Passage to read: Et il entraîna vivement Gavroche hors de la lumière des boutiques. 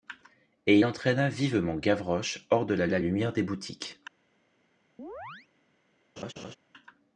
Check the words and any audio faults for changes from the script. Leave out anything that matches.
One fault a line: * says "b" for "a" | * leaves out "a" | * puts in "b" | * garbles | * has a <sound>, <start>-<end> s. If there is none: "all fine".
* puts in "la"
* has a chirp, 5.0-5.5 s
* has a laugh, 6.2-6.6 s